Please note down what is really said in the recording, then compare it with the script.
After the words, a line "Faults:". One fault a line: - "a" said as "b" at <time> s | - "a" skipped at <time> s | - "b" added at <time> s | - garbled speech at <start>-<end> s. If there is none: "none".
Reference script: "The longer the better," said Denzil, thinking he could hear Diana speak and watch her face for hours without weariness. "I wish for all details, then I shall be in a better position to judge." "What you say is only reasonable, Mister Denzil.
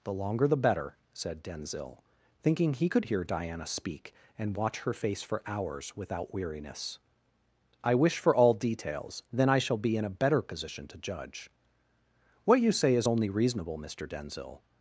"The longer the better," said Denzil, thinking he could hear Diana speak and watch her face for hours without weariness. "I wish for all details, then I shall be in a better position to judge." "What you say is only reasonable, Mister Denzil.
Faults:
none